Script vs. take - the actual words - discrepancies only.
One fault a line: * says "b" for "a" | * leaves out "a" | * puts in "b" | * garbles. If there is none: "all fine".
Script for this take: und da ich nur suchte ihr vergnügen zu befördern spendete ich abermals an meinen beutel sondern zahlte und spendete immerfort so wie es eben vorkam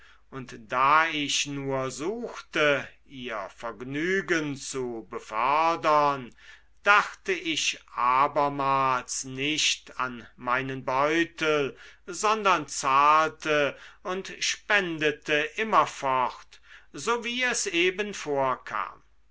* says "dachte" for "spendete"
* puts in "nicht"